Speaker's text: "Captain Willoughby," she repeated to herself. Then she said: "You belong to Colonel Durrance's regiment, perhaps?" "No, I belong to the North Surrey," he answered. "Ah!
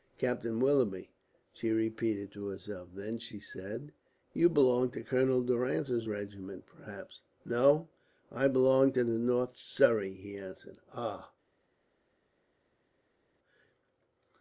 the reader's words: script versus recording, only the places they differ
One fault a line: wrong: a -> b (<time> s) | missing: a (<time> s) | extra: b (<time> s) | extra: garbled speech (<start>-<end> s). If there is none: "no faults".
no faults